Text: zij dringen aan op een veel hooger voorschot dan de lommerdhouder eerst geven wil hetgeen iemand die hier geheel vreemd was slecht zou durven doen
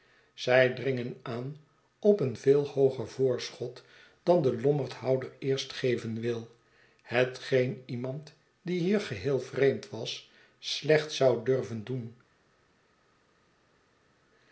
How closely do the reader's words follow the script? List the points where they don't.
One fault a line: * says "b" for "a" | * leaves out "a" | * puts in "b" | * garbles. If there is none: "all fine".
all fine